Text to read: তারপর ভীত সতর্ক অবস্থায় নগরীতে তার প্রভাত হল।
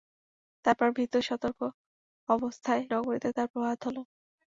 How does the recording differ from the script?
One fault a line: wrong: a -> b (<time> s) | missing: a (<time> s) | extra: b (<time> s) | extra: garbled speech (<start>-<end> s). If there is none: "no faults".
no faults